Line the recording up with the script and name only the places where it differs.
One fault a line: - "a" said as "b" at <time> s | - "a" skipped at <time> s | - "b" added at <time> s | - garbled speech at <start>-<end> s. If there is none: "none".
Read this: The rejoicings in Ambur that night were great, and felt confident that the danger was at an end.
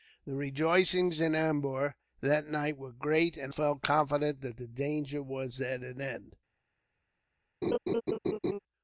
none